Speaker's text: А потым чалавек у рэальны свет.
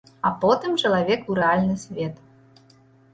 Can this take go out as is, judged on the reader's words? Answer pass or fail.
pass